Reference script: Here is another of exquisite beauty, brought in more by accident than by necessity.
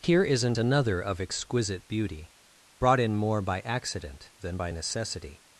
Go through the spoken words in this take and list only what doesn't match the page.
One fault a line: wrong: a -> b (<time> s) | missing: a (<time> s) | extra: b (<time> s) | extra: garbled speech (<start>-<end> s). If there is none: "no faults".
wrong: is -> isn't (0.2 s)